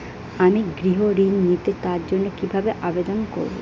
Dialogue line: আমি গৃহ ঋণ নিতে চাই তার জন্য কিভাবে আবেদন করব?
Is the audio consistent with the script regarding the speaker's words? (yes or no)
no